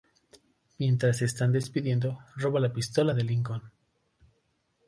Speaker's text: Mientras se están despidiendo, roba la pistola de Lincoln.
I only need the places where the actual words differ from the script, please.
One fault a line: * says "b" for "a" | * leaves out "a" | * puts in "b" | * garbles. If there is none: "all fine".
all fine